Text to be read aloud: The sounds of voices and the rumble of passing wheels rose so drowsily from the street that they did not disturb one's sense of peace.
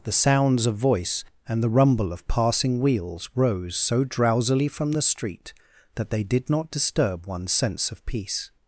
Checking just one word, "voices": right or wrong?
wrong